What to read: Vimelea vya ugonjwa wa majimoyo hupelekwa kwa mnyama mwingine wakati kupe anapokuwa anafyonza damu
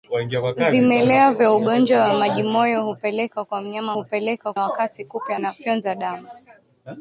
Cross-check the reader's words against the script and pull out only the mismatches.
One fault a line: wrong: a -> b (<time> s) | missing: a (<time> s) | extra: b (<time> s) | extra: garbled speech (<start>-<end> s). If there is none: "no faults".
wrong: mwingine -> hupelekwa (3.9 s)
missing: anapokuwa (5.3 s)